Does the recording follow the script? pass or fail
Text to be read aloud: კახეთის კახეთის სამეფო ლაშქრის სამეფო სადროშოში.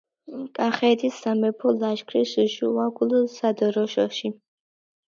fail